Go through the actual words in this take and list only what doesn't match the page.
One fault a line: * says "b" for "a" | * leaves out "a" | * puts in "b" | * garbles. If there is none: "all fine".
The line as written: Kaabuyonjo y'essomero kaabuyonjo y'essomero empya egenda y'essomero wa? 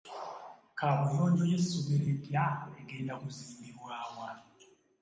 * leaves out "kaabuyonjo y'essomero"
* says "kuzimbibwa" for "y'essomero"